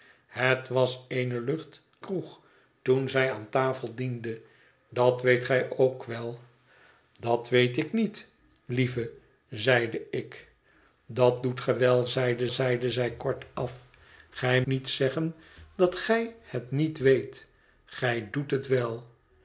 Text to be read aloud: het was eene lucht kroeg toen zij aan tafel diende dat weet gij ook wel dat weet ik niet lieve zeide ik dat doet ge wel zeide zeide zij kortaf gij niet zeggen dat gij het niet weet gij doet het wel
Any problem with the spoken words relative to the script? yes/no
no